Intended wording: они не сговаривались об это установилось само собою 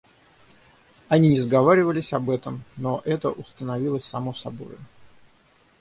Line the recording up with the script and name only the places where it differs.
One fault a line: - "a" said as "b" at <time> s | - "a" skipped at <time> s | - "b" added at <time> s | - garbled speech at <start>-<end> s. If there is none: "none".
- "этом но" added at 2.3 s